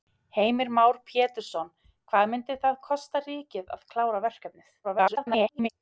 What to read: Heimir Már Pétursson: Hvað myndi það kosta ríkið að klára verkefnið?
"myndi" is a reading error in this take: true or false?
false